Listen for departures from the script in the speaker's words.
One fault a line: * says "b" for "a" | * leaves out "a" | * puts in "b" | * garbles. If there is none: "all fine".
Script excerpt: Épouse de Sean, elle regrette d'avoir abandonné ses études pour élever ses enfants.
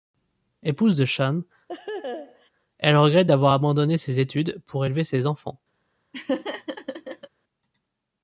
all fine